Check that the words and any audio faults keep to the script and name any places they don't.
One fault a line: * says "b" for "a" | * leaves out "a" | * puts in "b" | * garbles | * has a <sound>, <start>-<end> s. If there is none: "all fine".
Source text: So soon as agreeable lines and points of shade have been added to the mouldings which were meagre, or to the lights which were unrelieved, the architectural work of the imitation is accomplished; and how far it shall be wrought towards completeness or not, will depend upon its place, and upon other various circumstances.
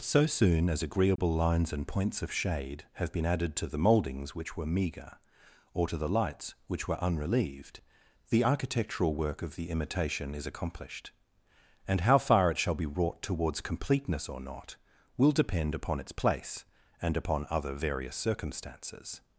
* has a dropout, 1.2-1.2 s